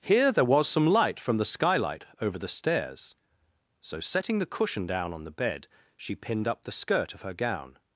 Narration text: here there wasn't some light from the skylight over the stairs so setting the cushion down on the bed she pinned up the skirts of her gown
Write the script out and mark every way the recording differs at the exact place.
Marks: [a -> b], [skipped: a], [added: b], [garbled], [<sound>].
here there [wasn't -> was] some light from the skylight over the stairs so setting the cushion down on the bed she pinned up the [skirts -> skirt] of her gown